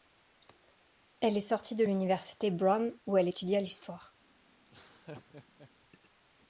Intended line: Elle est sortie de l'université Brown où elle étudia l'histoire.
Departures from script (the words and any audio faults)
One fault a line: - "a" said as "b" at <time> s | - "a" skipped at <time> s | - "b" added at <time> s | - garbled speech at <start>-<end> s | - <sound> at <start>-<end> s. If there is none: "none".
- laugh at 4.6-5.7 s